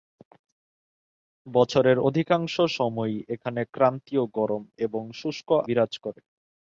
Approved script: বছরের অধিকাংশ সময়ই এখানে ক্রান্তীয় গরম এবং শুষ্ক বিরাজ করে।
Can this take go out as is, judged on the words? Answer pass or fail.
pass